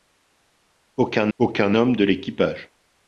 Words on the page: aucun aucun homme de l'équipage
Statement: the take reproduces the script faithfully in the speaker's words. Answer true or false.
true